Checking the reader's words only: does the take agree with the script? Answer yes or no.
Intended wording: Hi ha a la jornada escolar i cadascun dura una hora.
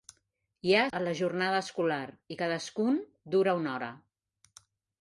yes